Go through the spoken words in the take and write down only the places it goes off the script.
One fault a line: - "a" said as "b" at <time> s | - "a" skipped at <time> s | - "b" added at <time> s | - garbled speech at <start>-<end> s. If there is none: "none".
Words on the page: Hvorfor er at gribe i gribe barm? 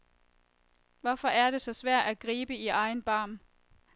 - "det så svært" added at 1.5 s
- "gribe" said as "egen" at 2.7 s